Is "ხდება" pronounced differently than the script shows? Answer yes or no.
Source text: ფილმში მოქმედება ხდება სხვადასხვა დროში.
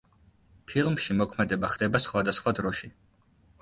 no